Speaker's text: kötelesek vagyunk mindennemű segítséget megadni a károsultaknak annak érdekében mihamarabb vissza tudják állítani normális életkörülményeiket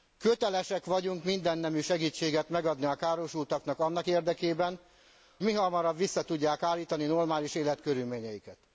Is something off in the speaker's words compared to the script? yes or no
no